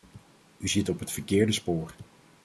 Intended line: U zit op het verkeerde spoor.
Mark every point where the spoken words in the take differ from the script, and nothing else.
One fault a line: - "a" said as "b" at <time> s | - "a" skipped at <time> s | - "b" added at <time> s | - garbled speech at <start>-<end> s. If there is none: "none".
none